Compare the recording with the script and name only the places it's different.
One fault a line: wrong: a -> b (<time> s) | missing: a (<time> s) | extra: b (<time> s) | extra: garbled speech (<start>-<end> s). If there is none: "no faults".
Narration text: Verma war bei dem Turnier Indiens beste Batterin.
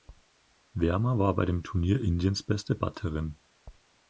no faults